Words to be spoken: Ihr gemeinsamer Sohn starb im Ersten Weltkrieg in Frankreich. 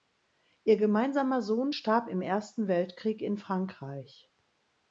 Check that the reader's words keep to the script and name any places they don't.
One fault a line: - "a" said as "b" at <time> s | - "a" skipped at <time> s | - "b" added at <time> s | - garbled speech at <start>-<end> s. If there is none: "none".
none